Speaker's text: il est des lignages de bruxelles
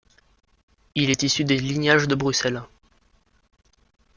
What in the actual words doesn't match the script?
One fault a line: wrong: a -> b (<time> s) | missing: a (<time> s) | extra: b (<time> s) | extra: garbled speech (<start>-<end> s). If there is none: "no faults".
extra: issu (1.2 s)